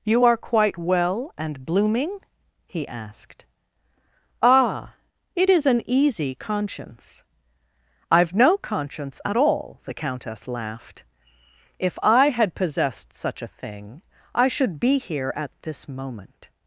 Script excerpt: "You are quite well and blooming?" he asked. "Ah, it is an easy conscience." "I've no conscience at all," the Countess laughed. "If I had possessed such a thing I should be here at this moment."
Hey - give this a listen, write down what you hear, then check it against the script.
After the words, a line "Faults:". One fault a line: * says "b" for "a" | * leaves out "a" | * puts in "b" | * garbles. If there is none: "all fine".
"You are quite well and blooming?" he asked. "Ah, it is an easy conscience." "I've no conscience at all," the Countess laughed. "If I had possessed such a thing I should be here at this moment."
Faults:
all fine